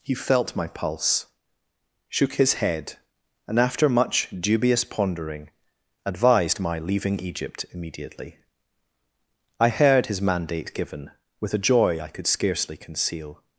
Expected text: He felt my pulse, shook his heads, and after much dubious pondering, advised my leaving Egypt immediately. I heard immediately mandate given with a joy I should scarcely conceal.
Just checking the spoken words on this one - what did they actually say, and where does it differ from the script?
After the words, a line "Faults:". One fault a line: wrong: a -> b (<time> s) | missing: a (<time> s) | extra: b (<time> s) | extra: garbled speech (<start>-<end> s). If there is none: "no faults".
He felt my pulse, shook his head, and after much dubious pondering, advised my leaving Egypt immediately. I heard his mandate given with a joy I could scarcely conceal.
Faults:
wrong: heads -> head (2.5 s)
wrong: immediately -> his (10.1 s)
wrong: should -> could (12.1 s)